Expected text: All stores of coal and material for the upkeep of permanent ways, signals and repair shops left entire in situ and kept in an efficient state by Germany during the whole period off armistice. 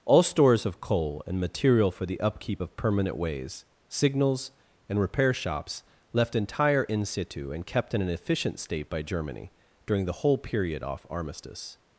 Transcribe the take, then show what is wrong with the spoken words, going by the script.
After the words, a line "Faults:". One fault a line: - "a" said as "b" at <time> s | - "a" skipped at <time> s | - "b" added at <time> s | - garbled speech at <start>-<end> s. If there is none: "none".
All stores of coal and material for the upkeep of permanent ways, signals and repair shops left entire in situ and kept in an efficient state by Germany during the whole period off armistice.
Faults:
none